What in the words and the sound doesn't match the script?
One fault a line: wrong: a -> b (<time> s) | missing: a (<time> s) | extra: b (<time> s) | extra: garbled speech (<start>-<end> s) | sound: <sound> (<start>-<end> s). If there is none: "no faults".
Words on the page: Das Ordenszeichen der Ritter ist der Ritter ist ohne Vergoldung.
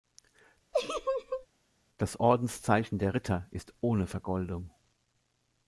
sound: laugh (0.7-1.5 s)
missing: der Ritter ist (3.7 s)